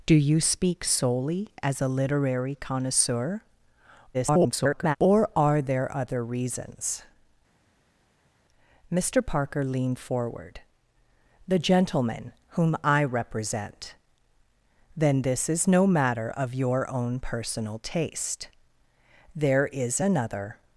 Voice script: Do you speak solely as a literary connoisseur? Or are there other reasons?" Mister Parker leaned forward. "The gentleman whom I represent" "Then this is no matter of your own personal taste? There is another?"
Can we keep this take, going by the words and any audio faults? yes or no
no